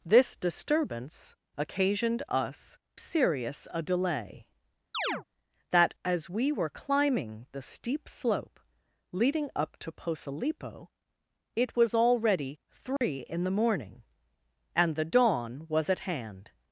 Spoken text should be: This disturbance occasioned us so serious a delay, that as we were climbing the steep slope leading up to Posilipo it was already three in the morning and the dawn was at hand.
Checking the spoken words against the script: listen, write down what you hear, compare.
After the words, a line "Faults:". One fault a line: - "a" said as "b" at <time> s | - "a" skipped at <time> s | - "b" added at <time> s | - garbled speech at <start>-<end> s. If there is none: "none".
This disturbance occasioned us serious a delay, that as we were climbing the steep slope leading up to Posilipo it was already three in the morning and the dawn was at hand.
Faults:
- "so" skipped at 2.8 s